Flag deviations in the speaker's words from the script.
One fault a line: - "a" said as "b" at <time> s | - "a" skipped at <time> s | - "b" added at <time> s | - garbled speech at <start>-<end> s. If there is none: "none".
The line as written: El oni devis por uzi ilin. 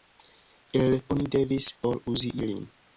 none